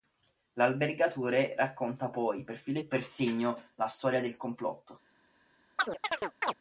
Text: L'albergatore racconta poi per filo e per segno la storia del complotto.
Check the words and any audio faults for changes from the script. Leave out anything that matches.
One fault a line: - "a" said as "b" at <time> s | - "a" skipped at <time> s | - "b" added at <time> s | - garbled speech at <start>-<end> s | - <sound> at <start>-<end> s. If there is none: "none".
- chirp at 5.8-6.5 s